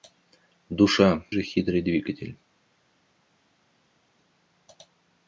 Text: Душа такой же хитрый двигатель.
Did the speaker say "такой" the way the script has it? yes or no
no